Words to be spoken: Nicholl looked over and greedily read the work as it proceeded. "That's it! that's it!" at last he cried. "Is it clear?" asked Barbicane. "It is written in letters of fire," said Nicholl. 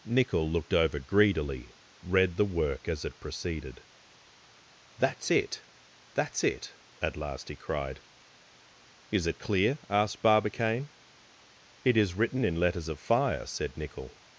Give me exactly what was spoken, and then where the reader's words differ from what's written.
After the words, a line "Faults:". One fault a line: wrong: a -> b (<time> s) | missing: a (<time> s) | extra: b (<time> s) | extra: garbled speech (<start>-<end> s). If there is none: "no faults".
Nicholl looked over greedily read the work as it proceeded. "That's it! that's it!" at last he cried. "Is it clear?" asked Barbicane. "It is written in letters of fire," said Nicholl.
Faults:
missing: and (1.0 s)